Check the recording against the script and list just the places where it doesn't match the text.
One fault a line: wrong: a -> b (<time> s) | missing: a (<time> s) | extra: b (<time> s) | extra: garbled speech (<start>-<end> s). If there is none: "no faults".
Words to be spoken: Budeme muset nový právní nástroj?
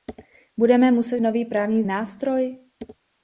no faults